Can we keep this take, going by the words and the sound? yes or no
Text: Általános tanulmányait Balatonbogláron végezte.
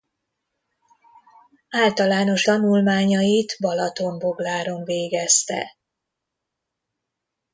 yes